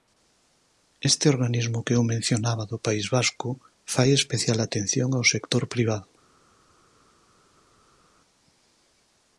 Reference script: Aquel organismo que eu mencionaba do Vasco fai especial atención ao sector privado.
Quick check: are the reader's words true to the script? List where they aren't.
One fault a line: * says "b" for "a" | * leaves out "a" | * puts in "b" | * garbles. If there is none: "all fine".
* says "Este" for "Aquel"
* puts in "País"